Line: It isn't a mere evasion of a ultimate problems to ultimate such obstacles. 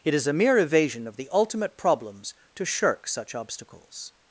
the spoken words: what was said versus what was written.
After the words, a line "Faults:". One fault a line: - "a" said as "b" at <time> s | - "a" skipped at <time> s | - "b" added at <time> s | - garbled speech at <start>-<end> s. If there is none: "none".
It is a mere evasion of the ultimate problems to shirk such obstacles.
Faults:
- "isn't" said as "is" at 0.1 s
- "a" said as "the" at 1.2 s
- "ultimate" said as "shirk" at 2.6 s